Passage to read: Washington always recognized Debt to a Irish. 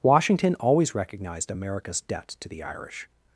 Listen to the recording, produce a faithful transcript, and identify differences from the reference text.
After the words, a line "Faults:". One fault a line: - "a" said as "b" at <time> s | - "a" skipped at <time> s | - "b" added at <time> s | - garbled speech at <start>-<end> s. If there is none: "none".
Washington always recognized America's debt to the Irish.
Faults:
- "America's" added at 1.5 s
- "a" said as "the" at 2.5 s